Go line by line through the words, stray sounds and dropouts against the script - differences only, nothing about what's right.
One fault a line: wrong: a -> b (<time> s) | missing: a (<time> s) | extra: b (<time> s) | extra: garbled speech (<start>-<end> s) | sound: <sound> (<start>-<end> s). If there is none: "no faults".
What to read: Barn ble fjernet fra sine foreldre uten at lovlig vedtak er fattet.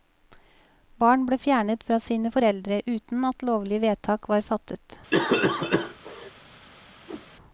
wrong: er -> var (4.3 s)
sound: cough (5.1-6.3 s)
sound: whoosh (7.1-7.3 s)